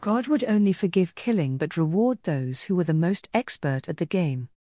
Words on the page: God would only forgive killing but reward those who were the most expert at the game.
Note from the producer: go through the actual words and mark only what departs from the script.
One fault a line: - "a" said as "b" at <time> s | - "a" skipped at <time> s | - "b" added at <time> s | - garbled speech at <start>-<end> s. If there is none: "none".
none